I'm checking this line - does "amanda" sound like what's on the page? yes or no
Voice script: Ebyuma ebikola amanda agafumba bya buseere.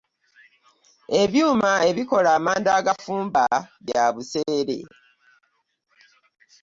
yes